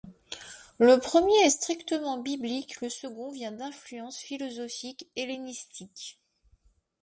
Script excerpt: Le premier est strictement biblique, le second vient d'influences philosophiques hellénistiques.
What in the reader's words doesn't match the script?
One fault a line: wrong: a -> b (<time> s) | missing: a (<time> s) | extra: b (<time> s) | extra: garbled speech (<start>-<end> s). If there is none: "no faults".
no faults